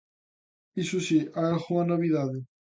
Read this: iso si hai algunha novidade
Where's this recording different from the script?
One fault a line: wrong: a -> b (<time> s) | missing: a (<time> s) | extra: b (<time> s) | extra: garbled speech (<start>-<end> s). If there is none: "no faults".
no faults